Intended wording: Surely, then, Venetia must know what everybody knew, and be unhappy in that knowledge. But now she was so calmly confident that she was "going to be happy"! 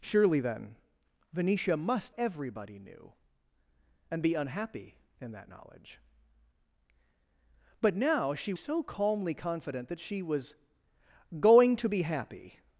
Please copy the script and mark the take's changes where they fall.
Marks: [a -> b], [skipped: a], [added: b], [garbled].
Surely, then, Venetia must [skipped: know what] everybody knew, and be unhappy in that knowledge. But now she [skipped: was] so calmly confident that she was "going to be happy"!